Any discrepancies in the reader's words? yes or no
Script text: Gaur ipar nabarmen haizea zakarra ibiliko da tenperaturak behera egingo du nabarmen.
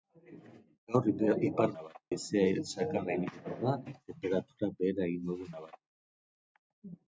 no